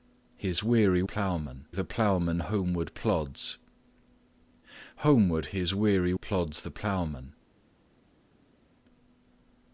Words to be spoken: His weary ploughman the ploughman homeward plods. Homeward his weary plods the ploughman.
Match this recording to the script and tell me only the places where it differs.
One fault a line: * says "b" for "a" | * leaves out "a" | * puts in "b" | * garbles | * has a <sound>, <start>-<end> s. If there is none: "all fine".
all fine